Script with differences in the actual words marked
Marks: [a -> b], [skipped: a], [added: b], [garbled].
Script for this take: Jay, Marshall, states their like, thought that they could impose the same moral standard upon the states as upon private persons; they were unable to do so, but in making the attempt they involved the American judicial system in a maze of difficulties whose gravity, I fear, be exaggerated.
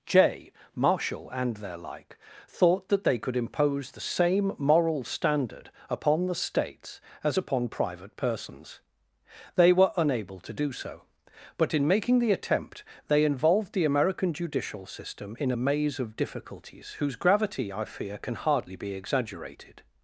Jay, Marshall, [states -> and] their like, thought that they could impose the same moral standard upon the states as upon private persons; they were unable to do so, but in making the attempt they involved the American judicial system in a maze of difficulties whose gravity, I fear, [added: can hardly] be exaggerated.